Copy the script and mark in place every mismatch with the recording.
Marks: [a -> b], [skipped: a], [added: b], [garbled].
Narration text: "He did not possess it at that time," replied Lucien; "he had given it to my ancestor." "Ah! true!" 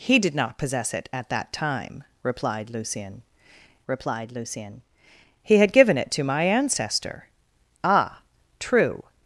"He did not possess it at that time," replied Lucien; [added: replied Lucien] "he had given it to my ancestor." "Ah! true!"